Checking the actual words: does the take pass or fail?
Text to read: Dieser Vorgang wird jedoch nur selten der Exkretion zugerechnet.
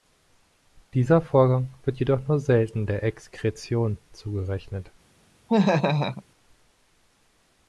pass